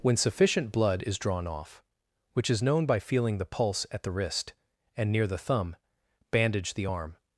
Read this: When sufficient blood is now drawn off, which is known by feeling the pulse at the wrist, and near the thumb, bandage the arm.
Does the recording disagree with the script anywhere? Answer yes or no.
yes